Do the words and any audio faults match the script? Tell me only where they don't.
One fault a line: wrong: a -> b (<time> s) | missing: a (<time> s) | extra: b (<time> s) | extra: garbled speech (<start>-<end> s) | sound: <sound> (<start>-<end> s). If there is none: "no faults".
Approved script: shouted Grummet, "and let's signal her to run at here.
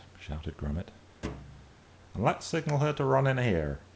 sound: thud (1.2-1.8 s)
wrong: at -> in (3.3 s)